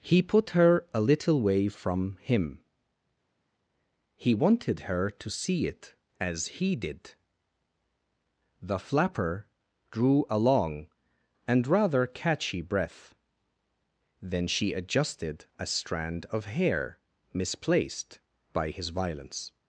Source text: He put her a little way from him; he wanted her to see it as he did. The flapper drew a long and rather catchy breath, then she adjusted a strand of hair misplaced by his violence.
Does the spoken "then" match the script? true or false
true